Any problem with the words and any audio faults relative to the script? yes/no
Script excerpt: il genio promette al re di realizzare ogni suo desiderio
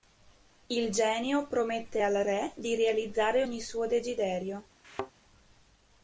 yes